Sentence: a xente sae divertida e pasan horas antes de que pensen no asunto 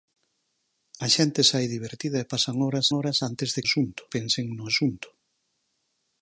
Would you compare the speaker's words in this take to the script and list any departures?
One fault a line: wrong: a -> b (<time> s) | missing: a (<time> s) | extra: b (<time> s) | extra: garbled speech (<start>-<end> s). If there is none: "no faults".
extra: horas (3.0 s)
wrong: que -> asunto (3.7 s)